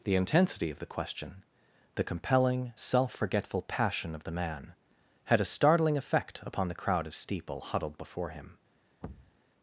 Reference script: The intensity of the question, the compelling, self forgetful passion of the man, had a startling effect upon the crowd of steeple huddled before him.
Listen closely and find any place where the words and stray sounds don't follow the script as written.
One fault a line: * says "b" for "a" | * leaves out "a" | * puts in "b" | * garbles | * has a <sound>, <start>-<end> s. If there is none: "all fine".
* has a thud, 9.0-9.4 s